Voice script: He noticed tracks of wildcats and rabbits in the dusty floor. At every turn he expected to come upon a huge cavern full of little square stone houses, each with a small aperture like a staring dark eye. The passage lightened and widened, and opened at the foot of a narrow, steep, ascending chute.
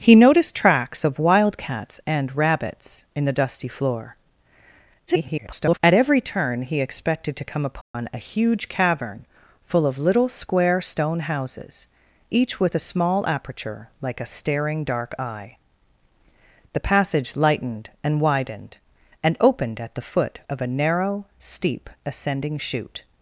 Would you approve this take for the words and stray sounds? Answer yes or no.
no